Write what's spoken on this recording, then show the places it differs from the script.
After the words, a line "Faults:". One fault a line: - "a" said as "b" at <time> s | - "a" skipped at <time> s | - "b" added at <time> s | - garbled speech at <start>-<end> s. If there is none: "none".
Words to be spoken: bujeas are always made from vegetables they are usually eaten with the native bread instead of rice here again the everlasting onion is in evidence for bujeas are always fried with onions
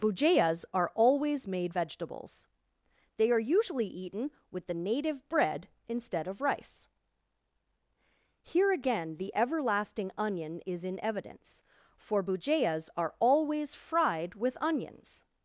bujeas are always made vegetables they are usually eaten with the native bread instead of rice here again the everlasting onion is in evidence for bujeas are always fried with onions
Faults:
- "from" skipped at 1.8 s